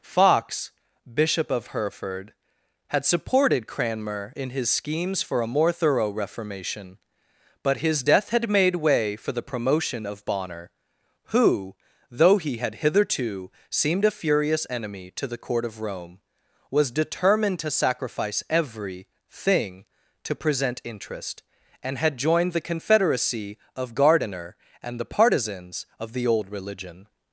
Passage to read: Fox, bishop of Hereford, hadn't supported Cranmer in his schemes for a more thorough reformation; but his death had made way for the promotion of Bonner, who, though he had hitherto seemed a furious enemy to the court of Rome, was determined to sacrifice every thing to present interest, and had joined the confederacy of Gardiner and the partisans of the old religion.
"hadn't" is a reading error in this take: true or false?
true